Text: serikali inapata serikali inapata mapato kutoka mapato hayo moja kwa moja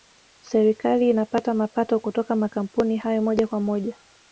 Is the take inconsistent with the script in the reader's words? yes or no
yes